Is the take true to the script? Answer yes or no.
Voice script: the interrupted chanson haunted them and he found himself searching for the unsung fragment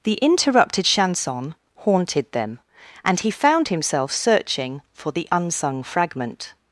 yes